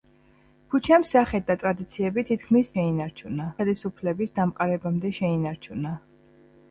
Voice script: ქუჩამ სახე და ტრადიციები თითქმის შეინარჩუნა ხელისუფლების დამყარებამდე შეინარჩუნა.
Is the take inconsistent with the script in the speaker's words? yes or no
no